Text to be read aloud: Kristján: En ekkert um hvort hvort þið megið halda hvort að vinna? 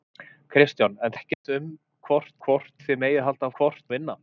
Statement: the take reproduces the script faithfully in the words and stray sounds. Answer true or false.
false